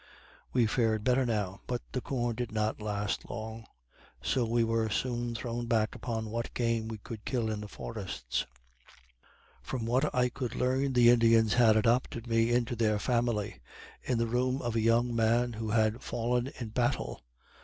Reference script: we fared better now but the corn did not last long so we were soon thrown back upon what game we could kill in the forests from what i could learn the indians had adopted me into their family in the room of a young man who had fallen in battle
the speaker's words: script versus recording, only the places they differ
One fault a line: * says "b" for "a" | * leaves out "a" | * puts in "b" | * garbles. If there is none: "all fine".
all fine